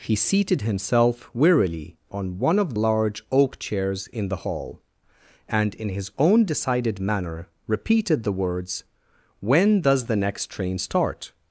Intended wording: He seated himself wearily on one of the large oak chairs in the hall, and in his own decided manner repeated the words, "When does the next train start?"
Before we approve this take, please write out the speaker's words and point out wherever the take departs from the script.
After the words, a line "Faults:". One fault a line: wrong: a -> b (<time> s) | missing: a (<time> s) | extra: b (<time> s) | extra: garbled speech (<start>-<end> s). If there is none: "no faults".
He seated himself wearily on one of large oak chairs in the hall, and in his own decided manner repeated the words, "When does the next train start?"
Faults:
missing: the (2.7 s)